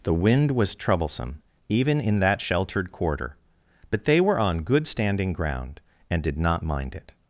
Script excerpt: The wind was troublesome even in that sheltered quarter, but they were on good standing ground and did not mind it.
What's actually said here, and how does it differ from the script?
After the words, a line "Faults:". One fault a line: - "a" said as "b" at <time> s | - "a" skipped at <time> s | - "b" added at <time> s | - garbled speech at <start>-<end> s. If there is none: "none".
The wind was troublesome even in that sheltered quarter, but they were on good standing ground and did not mind it.
Faults:
none